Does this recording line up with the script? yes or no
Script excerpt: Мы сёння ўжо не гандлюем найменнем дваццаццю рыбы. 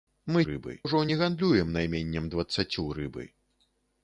no